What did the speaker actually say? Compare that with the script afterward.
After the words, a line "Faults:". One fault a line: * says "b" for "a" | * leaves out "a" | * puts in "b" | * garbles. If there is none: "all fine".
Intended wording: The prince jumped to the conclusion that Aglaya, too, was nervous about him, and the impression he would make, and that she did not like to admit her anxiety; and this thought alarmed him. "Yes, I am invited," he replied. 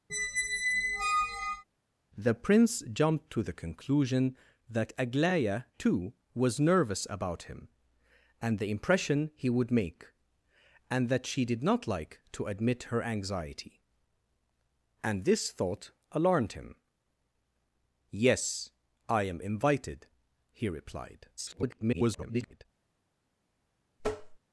The prince jumped to the conclusion that Aglaya, too, was nervous about him, and the impression he would make, and that she did not like to admit her anxiety; and this thought alarmed him. "Yes, I am invited," he replied. [garbled]
Faults:
* garbles